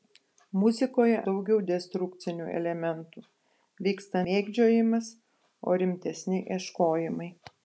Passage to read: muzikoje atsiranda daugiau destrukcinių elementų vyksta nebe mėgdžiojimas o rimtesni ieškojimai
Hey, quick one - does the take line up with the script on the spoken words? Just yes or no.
no